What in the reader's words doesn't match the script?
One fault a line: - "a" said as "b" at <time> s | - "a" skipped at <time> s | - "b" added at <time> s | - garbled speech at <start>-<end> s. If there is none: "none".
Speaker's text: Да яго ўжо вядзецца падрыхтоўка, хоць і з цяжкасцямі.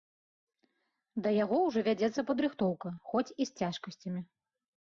none